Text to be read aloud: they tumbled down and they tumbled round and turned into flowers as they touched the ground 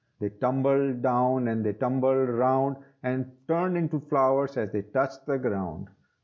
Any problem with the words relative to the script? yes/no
no